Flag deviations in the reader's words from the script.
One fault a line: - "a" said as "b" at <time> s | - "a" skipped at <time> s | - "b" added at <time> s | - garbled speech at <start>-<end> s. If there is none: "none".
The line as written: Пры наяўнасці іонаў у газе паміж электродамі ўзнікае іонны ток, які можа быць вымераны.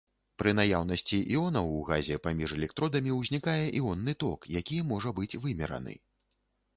none